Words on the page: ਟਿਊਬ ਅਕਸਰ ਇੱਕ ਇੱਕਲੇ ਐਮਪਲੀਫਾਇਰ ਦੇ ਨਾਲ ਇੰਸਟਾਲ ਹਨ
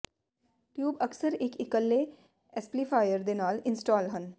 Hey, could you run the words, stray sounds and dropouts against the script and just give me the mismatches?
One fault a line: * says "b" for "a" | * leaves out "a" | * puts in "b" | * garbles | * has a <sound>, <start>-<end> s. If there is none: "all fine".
all fine